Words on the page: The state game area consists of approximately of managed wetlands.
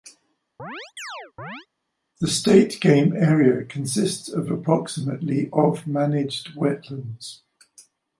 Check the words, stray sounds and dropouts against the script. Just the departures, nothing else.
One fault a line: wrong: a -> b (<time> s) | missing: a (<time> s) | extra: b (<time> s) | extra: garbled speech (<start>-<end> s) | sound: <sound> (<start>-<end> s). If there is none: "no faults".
sound: chirp (0.6-1.7 s)